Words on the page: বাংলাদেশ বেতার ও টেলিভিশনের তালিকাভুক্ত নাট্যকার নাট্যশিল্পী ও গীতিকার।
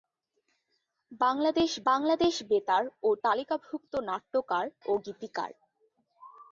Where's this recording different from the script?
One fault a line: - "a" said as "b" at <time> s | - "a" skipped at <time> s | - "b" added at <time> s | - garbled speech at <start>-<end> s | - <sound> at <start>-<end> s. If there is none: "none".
- "বাংলাদেশ" added at 1.9 s
- "টেলিভিশনের" skipped at 3.1 s
- "নাট্যশিল্পী" skipped at 4.6 s